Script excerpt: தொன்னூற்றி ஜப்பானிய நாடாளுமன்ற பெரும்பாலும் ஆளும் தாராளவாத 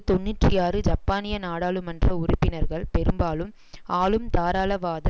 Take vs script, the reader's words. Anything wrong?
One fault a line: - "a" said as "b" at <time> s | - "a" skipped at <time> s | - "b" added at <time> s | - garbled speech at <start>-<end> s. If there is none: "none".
- "ஆறு" added at 0.6 s
- "உறுப்பினர்கள்" added at 2.2 s